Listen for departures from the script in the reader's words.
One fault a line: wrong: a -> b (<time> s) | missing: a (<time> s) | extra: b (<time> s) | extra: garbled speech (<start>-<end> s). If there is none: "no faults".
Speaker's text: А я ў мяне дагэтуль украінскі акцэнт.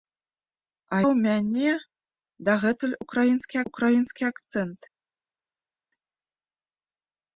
missing: я (1.0 s)
extra: украінскі (3.7 s)